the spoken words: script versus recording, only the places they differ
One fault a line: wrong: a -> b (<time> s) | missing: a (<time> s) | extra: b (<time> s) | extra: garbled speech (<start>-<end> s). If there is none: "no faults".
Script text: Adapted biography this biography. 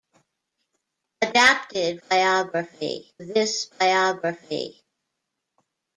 no faults